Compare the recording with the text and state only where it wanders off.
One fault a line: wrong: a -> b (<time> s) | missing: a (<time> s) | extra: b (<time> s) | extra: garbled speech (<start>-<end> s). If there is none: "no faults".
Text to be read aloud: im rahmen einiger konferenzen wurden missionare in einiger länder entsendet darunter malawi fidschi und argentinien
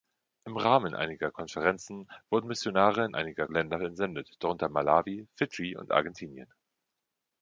no faults